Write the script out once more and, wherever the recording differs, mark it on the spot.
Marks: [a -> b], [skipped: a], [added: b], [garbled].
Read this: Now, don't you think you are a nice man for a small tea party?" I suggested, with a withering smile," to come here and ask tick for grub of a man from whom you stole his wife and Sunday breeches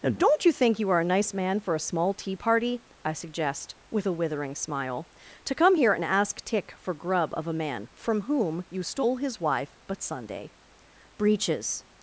Now, don't you think you are a nice man for a small tea party?" I [suggested, -> suggest] with a withering smile," to come here and ask tick for grub of a man from whom you stole his wife [and -> but] Sunday breeches